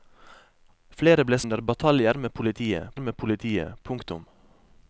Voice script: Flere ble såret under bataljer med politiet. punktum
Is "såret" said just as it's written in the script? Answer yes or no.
no